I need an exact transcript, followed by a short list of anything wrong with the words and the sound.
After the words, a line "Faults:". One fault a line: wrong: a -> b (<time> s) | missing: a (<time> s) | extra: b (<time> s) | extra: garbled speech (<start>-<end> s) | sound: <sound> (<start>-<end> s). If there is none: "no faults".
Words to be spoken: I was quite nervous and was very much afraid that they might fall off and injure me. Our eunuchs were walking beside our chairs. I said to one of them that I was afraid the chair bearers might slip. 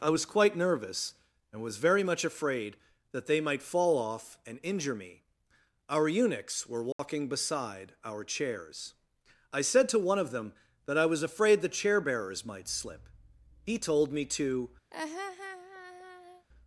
I was quite nervous and was very much afraid that they might fall off and injure me. Our eunuchs were walking beside our chairs. I said to one of them that I was afraid the chair bearers might slip. He told me to
Faults:
sound: dropout (6.9-7.0 s)
extra: He told me to (13.7 s)
sound: laugh (14.9-16.5 s)